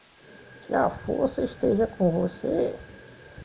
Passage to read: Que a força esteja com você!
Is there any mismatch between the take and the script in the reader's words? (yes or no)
no